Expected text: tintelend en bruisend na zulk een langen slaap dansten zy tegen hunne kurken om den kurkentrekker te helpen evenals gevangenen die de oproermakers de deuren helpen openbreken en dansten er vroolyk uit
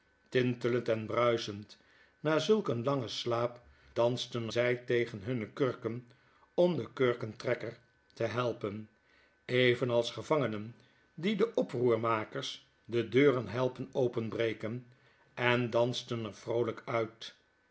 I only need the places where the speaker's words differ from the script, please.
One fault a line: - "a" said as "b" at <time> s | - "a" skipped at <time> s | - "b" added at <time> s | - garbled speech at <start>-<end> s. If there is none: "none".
none